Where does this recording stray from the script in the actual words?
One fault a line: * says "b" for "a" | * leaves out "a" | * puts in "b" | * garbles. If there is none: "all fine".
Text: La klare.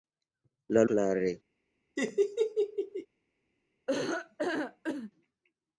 all fine